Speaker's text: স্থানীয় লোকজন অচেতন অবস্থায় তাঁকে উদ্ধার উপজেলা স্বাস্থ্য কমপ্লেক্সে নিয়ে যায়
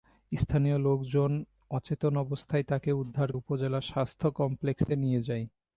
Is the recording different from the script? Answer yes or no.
no